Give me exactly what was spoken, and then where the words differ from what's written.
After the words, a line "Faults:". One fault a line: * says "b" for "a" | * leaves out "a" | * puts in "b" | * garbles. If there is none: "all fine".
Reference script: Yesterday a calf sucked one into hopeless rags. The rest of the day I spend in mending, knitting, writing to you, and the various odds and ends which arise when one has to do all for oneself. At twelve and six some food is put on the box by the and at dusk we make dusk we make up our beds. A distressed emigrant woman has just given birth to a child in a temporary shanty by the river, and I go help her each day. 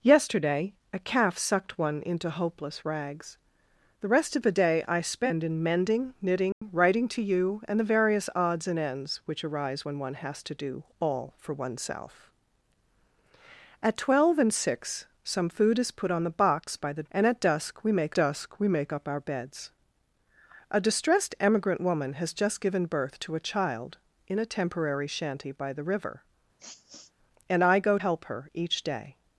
Yesterday a calf sucked one into hopeless rags. The rest of the day I spend in mending, knitting, writing to you, and the various odds and ends which arise when one has to do all for oneself. At twelve and six some food is put on the box by the and at dusk we make dusk we make up our beds. A distressed emigrant woman has just given birth to a child in a temporary shanty by the river, and I go help her each day.
Faults:
all fine